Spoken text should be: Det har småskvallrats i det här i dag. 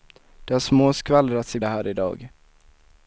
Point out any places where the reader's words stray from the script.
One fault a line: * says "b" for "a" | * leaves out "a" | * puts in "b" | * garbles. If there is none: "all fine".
all fine